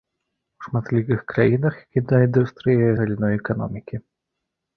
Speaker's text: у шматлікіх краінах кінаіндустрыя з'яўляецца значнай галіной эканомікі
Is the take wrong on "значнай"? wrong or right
wrong